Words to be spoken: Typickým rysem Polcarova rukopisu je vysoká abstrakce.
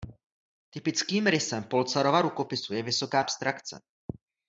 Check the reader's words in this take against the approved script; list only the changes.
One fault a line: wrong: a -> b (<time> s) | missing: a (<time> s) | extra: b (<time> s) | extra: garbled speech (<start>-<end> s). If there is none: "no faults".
no faults